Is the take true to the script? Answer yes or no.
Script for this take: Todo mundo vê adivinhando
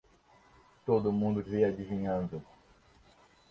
yes